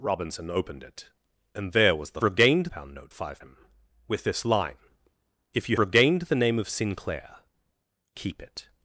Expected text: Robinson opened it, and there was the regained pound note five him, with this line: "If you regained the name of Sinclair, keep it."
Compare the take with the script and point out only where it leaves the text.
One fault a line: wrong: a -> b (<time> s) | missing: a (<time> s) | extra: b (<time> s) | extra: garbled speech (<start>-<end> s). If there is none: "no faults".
no faults